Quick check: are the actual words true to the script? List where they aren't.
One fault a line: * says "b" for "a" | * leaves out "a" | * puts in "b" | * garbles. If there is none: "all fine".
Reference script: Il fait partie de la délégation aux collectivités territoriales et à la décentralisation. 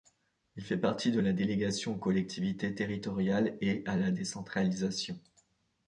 all fine